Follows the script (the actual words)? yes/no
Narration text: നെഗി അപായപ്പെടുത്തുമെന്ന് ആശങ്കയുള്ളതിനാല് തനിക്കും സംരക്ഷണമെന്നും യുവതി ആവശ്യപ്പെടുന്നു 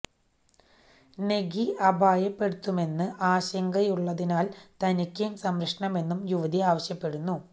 yes